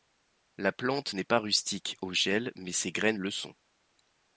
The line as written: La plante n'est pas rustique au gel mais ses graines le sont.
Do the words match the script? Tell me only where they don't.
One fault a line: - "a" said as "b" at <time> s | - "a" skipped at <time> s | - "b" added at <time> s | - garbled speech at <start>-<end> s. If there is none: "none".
none